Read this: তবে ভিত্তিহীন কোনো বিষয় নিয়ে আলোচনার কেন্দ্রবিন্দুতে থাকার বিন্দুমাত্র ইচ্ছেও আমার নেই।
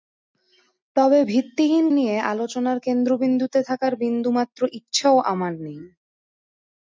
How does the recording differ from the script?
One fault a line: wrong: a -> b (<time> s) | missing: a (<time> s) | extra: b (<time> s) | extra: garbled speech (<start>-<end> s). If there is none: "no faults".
missing: কোনো বিষয় (1.9 s)